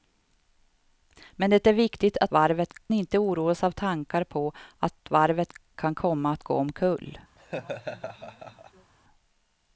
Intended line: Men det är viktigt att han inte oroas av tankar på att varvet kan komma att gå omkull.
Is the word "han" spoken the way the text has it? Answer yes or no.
no